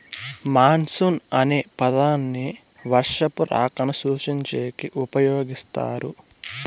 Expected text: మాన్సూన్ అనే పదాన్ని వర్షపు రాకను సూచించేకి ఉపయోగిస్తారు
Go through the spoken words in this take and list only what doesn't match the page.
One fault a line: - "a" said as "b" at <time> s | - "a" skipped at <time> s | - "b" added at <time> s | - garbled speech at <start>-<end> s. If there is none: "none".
none